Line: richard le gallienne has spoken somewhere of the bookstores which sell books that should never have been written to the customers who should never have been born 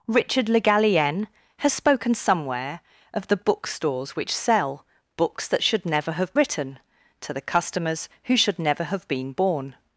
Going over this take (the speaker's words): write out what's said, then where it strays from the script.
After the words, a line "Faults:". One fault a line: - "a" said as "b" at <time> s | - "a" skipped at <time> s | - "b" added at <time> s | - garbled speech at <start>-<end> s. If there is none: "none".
richard le gallienne has spoken somewhere of the bookstores which sell books that should never have written to the customers who should never have been born
Faults:
- "been" skipped at 6.3 s